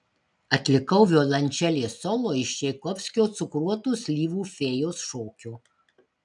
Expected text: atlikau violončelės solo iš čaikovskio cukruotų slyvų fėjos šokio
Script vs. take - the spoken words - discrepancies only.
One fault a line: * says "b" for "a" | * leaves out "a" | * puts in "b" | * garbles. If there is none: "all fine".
all fine